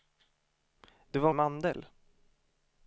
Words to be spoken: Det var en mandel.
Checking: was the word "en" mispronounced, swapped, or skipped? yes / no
no